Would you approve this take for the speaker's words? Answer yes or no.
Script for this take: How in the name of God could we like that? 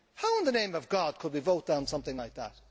no